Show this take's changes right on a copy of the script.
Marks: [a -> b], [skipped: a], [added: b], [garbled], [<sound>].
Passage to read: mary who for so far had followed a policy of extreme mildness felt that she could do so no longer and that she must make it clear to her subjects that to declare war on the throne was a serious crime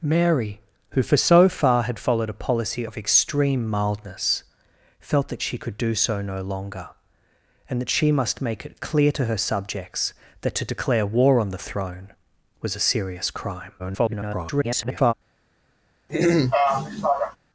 mary who for so far had followed a policy of extreme mildness felt that she could do so no longer and that she must make it clear to her subjects that to declare war on the throne was a serious crime [garbled] [throat clearing]